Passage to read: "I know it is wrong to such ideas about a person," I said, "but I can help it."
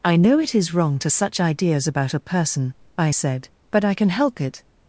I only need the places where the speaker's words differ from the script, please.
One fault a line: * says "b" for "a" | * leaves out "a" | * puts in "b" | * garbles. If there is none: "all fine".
all fine